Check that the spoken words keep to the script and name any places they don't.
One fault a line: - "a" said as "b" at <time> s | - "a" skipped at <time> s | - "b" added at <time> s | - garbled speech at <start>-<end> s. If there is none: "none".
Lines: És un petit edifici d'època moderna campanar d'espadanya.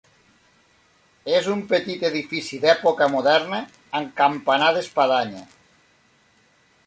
- "amb" added at 4.0 s